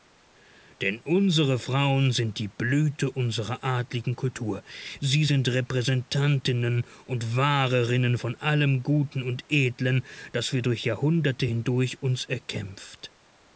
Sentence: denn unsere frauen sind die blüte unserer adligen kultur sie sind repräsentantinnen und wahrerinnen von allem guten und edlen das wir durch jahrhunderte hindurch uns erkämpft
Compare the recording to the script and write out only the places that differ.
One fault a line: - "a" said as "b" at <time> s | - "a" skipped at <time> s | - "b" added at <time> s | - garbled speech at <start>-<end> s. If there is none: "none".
none